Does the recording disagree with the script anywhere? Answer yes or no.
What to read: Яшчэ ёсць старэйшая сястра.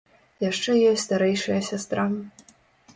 no